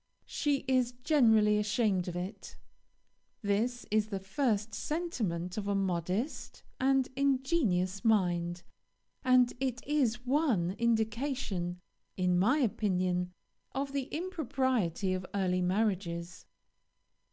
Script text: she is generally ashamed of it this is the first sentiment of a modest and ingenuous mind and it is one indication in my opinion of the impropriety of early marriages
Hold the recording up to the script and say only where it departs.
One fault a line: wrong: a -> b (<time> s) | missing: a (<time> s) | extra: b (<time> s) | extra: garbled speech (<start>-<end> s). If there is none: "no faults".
no faults